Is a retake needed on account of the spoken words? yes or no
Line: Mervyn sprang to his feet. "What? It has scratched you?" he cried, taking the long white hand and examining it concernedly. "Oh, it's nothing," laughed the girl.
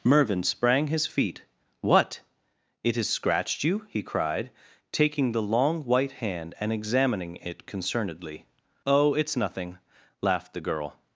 yes